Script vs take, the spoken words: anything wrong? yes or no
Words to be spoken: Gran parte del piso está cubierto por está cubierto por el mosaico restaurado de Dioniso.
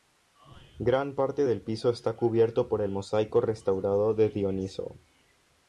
yes